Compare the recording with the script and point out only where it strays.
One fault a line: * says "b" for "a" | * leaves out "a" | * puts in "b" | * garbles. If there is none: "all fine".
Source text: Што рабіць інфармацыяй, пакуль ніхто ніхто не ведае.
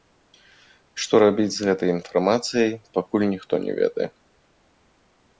* puts in "з гэтай"
* leaves out "ніхто"